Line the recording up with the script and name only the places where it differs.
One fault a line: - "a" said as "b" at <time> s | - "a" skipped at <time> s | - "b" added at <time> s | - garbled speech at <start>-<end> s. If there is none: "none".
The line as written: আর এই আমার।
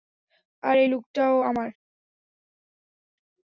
- "লুকটাও" added at 0.9 s